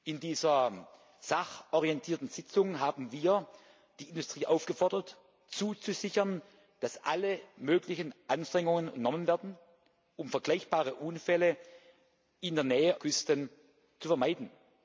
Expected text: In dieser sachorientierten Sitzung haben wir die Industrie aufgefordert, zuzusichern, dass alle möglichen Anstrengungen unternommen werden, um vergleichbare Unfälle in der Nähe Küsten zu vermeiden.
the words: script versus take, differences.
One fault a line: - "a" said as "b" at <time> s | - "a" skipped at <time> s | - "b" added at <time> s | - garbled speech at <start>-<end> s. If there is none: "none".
none